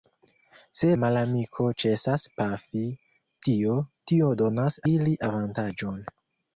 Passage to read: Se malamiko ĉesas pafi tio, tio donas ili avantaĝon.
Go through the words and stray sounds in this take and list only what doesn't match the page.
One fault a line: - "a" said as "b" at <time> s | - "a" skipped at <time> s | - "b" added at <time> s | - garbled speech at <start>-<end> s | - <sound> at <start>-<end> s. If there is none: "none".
none